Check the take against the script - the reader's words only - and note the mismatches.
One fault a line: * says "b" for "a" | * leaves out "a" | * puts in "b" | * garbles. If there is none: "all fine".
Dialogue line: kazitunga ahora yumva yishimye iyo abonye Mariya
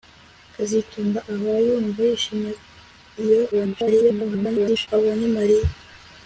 * garbles